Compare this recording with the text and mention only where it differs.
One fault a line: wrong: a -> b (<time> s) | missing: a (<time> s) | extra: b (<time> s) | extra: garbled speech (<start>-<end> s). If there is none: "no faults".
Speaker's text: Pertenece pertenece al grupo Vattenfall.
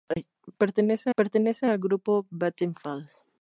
no faults